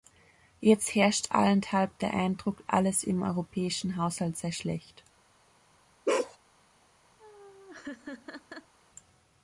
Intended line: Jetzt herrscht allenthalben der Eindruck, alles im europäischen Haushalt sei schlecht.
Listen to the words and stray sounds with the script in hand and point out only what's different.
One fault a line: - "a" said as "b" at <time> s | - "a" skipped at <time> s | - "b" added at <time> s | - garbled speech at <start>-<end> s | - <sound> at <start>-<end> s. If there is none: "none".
- bark at 6.1-6.4 s
- laugh at 7.2-8.7 s